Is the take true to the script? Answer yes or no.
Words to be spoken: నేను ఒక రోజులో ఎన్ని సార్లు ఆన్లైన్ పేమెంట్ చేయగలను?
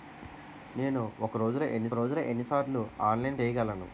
no